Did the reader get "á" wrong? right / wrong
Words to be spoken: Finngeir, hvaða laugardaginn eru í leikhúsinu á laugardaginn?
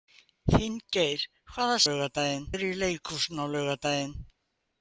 right